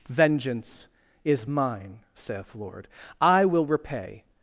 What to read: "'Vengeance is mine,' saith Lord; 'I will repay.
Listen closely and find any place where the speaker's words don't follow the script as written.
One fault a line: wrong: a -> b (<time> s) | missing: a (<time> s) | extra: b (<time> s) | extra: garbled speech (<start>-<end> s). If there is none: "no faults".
no faults